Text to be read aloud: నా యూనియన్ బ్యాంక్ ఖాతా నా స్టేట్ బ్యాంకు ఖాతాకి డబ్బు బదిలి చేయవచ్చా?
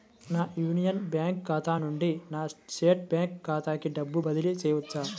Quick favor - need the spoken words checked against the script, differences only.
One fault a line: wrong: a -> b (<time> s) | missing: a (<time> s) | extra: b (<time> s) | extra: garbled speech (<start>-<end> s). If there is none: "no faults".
extra: నుండి (1.8 s)